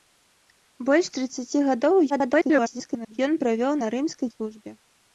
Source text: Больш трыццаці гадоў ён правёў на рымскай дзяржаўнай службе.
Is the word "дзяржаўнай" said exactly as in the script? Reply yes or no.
no